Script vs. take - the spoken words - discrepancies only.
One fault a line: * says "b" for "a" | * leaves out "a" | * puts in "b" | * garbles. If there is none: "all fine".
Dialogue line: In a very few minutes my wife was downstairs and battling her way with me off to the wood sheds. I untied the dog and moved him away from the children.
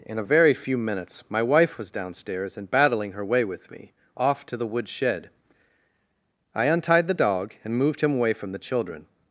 * says "shed" for "sheds"